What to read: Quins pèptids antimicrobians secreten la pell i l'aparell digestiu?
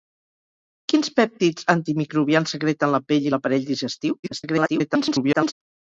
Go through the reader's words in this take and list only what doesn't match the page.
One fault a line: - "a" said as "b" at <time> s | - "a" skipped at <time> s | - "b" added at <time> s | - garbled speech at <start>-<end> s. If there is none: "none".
- garbled speech at 4.2-5.5 s